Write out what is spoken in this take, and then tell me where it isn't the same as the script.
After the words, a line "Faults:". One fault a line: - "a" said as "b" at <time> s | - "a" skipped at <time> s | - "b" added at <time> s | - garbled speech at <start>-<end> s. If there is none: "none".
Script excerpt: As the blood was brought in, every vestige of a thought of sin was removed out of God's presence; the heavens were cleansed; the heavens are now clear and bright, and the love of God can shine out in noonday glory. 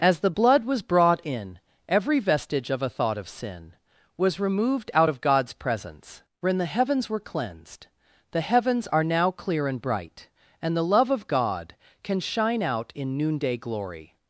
As the blood was brought in, every vestige of a thought of sin was removed out of God's presence; when the heavens were cleansed; the heavens are now clear and bright, and the love of God can shine out in noonday glory.
Faults:
- "when" added at 6.4 s